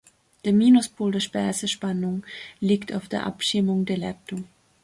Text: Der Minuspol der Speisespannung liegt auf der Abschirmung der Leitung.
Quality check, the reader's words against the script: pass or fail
pass